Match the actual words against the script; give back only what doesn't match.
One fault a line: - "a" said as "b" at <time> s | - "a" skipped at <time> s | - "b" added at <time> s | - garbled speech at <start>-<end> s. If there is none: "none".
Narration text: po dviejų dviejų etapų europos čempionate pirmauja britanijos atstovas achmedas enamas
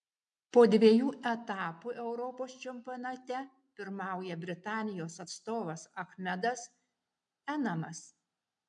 - "dviejų" skipped at 1.1 s